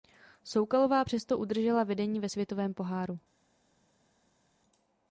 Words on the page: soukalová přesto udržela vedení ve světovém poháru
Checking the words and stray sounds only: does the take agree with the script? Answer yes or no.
yes